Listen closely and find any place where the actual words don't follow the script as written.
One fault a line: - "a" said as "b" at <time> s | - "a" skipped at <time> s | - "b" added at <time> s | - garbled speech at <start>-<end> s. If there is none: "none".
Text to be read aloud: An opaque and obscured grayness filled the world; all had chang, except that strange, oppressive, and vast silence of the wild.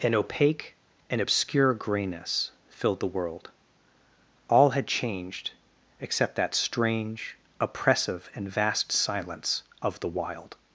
- "obscured" said as "obscure" at 1.2 s
- "chang" said as "changed" at 4.9 s